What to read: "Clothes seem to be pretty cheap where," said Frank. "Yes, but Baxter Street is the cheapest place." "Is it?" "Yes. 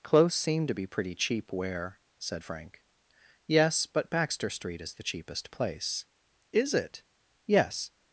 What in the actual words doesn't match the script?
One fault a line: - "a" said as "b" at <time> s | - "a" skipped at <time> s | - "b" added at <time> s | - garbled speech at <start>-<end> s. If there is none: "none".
none